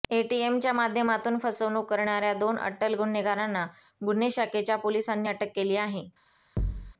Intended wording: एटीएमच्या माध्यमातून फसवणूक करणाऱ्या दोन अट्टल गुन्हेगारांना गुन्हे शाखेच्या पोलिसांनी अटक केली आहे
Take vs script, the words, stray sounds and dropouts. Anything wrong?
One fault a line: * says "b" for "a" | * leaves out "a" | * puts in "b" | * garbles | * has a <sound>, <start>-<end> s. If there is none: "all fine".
* has a thud, 6.6-6.9 s